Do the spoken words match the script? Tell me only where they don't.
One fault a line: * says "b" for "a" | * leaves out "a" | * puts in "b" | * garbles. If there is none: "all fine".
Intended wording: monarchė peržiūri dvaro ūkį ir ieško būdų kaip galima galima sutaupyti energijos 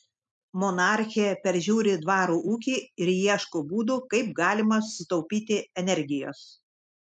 * leaves out "galima"